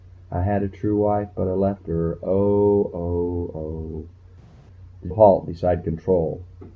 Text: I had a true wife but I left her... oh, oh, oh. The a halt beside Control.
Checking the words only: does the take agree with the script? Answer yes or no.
yes